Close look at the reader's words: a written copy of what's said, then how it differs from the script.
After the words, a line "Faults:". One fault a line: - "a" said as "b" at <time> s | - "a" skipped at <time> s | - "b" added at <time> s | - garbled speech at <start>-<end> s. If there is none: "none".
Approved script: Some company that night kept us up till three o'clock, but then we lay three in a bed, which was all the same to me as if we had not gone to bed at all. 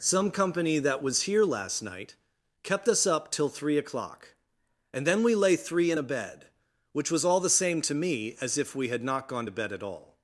Some company that was here last night kept us up till three o'clock, and then we lay three in a bed, which was all the same to me as if we had not gone to bed at all.
Faults:
- "was here last" added at 1.0 s
- "but" said as "and" at 4.9 s